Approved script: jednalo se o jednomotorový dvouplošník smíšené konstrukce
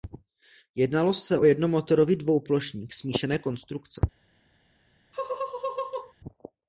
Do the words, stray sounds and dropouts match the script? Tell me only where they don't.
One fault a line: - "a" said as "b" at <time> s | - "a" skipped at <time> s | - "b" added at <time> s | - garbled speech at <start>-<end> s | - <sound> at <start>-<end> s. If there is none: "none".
- laugh at 5.1-6.1 s